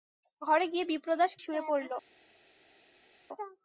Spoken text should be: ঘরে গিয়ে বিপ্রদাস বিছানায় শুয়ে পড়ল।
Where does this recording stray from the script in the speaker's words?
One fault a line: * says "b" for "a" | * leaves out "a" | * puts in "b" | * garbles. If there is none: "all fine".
* leaves out "বিছানায়"